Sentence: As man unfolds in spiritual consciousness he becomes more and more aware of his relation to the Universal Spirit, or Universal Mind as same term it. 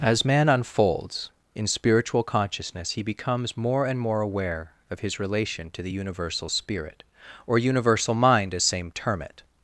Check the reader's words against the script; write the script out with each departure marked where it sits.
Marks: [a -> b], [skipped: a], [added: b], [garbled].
As man unfolds in spiritual consciousness he becomes more and more aware of his relation to the Universal Spirit, or Universal Mind as same term it.